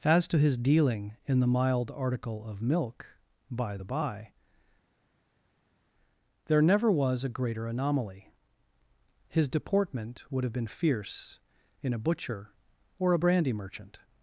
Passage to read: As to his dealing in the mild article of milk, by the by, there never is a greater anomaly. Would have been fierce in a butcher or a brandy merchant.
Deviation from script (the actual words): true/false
true